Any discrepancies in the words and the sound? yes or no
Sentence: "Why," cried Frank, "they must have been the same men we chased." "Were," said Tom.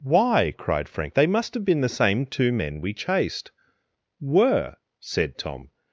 yes